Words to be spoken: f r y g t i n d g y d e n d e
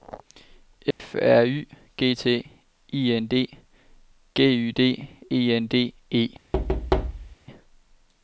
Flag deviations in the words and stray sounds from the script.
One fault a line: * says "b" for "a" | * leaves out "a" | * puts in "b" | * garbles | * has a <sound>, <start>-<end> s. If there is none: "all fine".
* has a dropout, 0.9-1.0 s
* has a thud, 6.5-7.4 s